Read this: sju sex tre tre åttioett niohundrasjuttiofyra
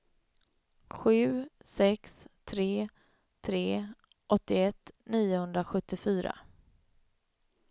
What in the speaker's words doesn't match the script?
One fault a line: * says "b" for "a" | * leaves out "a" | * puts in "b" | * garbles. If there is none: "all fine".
all fine